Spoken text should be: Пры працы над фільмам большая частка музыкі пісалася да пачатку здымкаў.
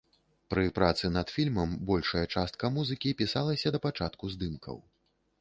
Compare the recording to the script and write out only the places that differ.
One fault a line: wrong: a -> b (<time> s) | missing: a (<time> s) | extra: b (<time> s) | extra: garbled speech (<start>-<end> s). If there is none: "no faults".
no faults